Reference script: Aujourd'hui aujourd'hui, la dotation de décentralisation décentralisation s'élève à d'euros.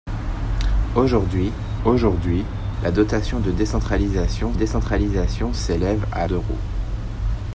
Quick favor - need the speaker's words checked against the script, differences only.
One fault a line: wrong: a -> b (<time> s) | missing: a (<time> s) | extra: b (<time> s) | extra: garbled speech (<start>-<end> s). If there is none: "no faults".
no faults